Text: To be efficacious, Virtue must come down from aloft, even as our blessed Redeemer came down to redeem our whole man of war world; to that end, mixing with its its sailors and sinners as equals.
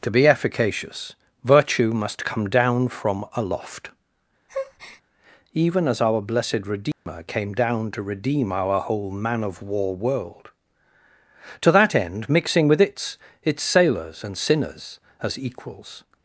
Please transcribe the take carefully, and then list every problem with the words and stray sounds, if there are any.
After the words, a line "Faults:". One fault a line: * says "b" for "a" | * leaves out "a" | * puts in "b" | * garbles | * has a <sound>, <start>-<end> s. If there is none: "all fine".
To be efficacious, Virtue must come down from aloft, even as our blessed Redeemer came down to redeem our whole man of war world; to that end, mixing with its its sailors and sinners as equals.
Faults:
* has a breath, 4.5-5.0 s
* has a dropout, 6.9-7.1 s